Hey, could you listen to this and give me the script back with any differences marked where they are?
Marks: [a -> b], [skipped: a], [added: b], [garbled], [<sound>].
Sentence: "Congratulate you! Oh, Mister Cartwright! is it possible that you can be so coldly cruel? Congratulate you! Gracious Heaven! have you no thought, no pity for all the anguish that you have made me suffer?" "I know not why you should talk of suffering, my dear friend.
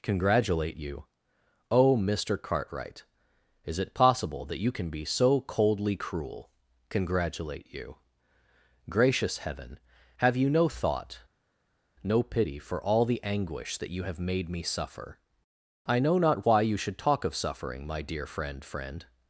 "Congratulate you! Oh, Mister Cartwright! is it possible that you can be so coldly cruel? Congratulate you! Gracious Heaven! have you no thought, no pity for all the anguish that you have made me suffer?" "I know not why you should talk of suffering, my dear friend. [added: friend]